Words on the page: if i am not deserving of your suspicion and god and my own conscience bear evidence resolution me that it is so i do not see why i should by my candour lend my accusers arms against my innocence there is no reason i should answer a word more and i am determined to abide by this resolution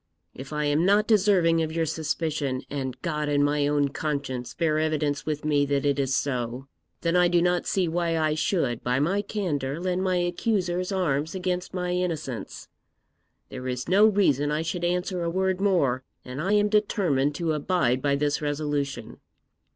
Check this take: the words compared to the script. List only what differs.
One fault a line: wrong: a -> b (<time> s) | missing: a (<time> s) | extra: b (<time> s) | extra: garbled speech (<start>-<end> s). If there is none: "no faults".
wrong: resolution -> with (5.3 s)
extra: then (7.0 s)